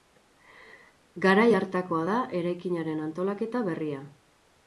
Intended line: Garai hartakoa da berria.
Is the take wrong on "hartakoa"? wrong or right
right